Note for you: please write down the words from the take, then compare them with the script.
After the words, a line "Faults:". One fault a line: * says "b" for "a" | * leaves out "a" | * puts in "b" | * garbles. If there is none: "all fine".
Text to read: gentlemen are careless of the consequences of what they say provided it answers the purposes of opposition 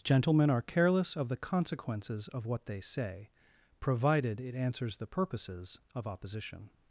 gentlemen are careless of the consequences of what they say provided it answers the purposes of opposition
Faults:
all fine